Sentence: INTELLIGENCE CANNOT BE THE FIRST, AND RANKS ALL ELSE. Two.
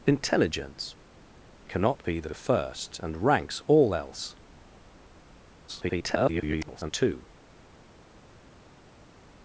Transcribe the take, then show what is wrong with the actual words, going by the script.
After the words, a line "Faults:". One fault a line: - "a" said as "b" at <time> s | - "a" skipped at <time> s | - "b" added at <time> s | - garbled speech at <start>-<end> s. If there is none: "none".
INTELLIGENCE CANNOT BE THE THE FIRST, AND RANKS ALL ELSE. [garbled] Two.
Faults:
- "THE" added at 2.2 s
- garbled speech at 5.7-6.9 s